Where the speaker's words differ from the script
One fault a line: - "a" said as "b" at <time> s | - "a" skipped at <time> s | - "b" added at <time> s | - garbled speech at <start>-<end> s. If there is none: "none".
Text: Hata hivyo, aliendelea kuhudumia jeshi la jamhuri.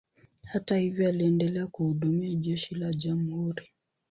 none